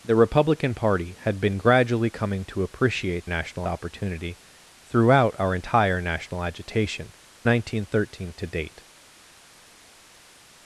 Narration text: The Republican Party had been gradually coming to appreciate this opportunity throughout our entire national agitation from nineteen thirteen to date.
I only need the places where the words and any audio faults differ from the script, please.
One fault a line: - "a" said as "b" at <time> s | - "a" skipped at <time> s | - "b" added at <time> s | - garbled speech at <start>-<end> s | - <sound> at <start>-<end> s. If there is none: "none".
- "this" said as "national" at 3.2 s
- "from" skipped at 7.1 s